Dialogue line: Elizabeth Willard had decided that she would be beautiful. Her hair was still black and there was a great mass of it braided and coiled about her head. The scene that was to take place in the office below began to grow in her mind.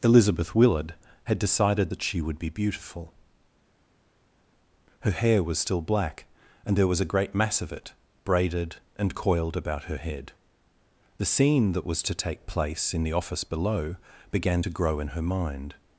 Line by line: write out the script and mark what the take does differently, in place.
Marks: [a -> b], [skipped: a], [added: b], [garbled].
Elizabeth Willard had decided that she would be beautiful. Her hair was still black and there was a great mass of it braided and coiled about her head. The scene that was to take place in the office below began to grow in her mind.